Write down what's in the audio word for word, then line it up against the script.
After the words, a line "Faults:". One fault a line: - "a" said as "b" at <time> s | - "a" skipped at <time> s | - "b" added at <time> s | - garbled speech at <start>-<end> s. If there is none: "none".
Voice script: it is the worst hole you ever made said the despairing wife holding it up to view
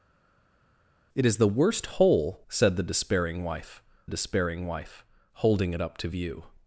it is the worst hole said the despairing wife despairing wife holding it up to view
Faults:
- "you ever made said the" said as "said the despairing wife" at 2.5 s